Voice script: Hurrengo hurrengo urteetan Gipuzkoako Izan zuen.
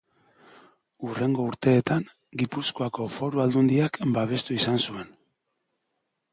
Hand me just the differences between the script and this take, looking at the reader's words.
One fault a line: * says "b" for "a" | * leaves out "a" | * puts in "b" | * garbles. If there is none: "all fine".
* leaves out "hurrengo"
* puts in "Foru Aldundiak babestu"